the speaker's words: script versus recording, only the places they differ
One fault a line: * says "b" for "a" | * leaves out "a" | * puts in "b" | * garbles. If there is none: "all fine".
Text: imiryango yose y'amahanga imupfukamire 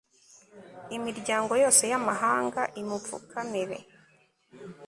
all fine